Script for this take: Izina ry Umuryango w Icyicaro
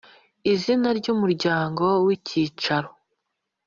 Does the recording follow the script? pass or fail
pass